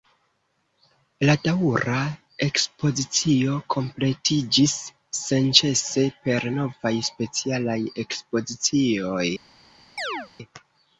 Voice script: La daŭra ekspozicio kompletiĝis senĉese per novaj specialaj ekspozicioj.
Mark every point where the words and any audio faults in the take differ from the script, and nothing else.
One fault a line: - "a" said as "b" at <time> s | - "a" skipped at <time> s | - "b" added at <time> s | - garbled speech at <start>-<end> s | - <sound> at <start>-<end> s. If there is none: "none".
- chirp at 10.0-10.3 s